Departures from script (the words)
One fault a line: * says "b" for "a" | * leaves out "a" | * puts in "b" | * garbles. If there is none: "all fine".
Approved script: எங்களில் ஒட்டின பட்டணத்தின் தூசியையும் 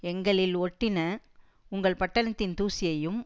* puts in "உங்கள்"